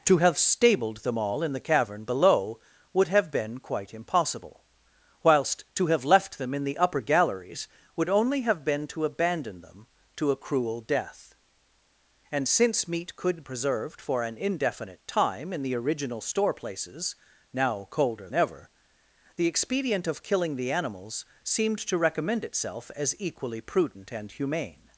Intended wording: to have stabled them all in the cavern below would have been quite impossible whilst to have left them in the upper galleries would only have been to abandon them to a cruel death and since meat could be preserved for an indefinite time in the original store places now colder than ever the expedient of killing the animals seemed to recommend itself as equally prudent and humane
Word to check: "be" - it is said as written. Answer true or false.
false